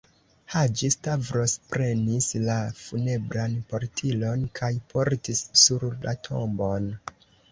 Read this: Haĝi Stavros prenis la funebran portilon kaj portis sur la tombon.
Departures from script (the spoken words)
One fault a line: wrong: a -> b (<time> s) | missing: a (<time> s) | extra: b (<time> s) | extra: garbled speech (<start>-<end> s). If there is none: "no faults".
no faults